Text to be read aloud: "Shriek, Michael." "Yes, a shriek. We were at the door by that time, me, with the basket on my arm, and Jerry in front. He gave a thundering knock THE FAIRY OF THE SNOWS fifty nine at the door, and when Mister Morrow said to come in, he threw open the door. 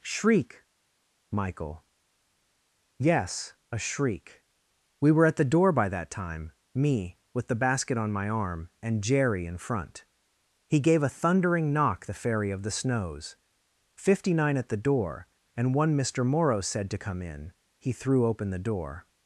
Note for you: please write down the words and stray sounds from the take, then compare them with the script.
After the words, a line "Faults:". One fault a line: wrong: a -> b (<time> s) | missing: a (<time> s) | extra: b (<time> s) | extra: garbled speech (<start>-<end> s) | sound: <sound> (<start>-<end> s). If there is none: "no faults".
"Shriek, Michael." "Yes, a shriek. We were at the door by that time, me, with the basket on my arm, and Jerry in front. He gave a thundering knock THE FAIRY OF THE SNOWS fifty nine at the door, and one Mister Morrow said to come in, he threw open the door.
Faults:
wrong: when -> one (15.7 s)